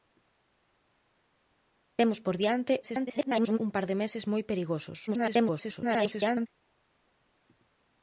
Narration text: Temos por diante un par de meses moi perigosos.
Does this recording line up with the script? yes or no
no